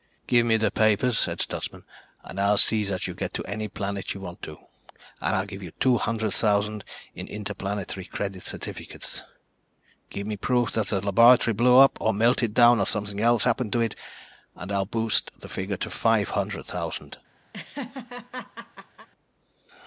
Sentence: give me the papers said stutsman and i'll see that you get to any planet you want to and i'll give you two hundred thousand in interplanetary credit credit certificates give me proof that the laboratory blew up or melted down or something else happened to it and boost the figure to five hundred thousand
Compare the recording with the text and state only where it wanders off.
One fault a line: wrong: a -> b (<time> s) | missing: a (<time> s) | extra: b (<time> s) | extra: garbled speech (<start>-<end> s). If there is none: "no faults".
missing: credit (8.4 s)
extra: i'll (14.7 s)